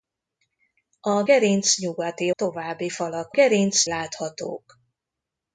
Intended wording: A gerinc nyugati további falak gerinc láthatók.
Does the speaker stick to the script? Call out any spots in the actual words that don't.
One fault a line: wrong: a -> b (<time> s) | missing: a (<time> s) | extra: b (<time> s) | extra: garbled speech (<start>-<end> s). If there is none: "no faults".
no faults